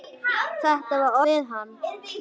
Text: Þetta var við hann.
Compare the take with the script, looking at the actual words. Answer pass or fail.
pass